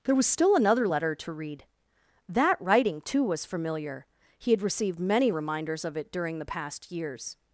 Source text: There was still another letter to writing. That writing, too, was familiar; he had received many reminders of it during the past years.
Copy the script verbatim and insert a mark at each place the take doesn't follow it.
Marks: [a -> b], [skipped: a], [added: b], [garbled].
There was still another letter to [writing. -> read] That writing, too, was familiar; he had received many reminders of it during the past years.